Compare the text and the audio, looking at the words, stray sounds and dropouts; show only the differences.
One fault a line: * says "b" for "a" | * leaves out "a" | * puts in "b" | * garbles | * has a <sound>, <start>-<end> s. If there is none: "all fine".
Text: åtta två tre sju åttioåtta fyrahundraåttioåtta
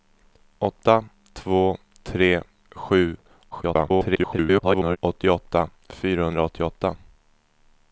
* garbles